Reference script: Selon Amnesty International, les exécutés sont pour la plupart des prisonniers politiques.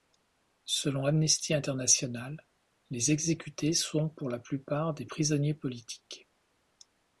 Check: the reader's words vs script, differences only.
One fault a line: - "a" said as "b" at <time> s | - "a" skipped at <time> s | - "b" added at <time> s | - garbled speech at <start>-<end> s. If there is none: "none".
none